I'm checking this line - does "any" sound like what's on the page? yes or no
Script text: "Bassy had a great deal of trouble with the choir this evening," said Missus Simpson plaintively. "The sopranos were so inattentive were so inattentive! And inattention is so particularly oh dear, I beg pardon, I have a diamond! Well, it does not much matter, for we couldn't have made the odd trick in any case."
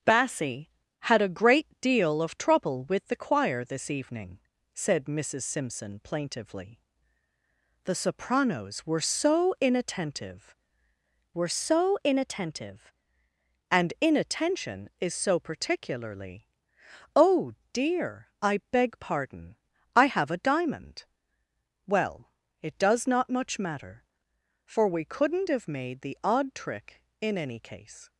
yes